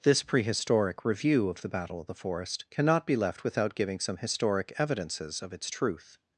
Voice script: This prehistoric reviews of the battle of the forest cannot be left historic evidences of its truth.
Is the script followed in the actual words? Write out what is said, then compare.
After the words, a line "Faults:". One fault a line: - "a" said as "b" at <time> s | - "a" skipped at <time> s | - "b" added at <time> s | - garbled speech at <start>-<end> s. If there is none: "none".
This prehistoric review of the battle of the forest cannot be left without giving some historic evidences of its truth.
Faults:
- "reviews" said as "review" at 1.1 s
- "without giving some" added at 3.4 s